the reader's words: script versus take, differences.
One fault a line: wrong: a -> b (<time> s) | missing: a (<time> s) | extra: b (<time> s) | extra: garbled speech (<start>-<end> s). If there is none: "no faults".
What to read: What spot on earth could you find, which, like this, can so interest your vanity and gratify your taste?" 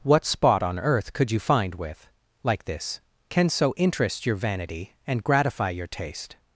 wrong: which -> with (1.8 s)